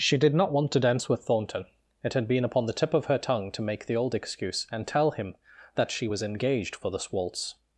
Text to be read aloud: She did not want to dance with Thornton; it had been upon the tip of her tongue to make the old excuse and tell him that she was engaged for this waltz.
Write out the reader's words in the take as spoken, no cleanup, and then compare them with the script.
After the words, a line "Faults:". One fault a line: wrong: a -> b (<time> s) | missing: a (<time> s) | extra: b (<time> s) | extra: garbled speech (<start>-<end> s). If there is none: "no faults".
She did not want to dance with Thornton; it had been upon the tip of her tongue to make the old excuse and tell him that she was engaged for this waltz.
Faults:
no faults